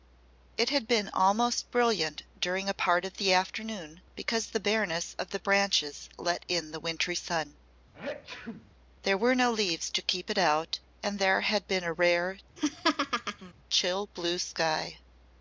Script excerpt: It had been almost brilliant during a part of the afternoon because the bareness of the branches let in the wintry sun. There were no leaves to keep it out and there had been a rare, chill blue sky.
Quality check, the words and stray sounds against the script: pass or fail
fail